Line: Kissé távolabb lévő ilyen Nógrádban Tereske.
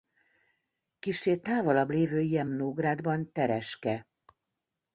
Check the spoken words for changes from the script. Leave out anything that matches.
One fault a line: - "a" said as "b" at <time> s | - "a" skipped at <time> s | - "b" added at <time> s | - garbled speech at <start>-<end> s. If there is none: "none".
none